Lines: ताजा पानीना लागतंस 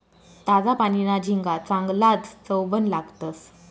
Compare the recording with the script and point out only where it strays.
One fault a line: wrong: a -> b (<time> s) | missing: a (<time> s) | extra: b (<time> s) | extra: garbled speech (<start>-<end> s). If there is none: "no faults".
extra: झिंगा चांगलाज चवबन (1.2 s)